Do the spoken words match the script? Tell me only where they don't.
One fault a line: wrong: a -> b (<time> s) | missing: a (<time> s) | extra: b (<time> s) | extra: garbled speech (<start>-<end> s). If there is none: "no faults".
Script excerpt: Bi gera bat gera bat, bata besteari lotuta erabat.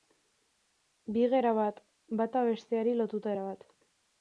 missing: gera bat (1.8 s)